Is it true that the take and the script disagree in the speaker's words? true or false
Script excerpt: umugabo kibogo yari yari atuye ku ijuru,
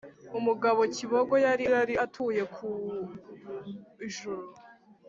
false